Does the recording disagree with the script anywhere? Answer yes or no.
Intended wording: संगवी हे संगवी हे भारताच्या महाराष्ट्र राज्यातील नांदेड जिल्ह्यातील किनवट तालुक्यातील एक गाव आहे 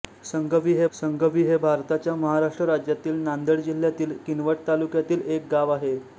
no